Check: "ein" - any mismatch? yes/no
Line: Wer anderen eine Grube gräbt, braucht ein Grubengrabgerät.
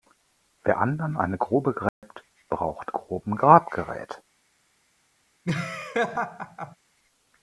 yes